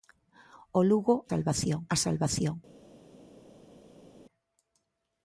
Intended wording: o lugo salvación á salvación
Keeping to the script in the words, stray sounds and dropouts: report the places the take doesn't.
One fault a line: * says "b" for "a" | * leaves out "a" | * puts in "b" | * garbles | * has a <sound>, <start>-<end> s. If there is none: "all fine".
all fine